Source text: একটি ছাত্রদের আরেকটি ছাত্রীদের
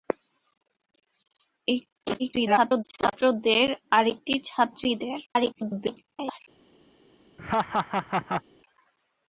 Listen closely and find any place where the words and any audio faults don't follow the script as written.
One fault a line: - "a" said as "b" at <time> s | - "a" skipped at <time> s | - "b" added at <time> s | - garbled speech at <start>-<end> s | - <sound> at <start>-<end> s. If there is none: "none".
- garbled speech at 2.2-2.8 s
- garbled speech at 5.3-6.4 s
- laugh at 7.4-8.4 s